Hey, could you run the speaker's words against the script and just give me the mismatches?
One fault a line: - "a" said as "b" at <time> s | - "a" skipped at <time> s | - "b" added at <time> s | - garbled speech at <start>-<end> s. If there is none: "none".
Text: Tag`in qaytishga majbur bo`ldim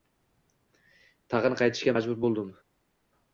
none